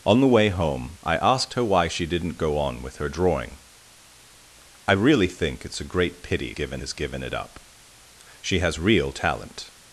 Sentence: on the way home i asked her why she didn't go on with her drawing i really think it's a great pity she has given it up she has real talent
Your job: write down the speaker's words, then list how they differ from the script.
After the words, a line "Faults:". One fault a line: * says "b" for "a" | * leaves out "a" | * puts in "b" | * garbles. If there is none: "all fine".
on the way home i asked her why she didn't go on with her drawing i really think it's a great pity given has given it up she has real talent
Faults:
* says "given" for "she"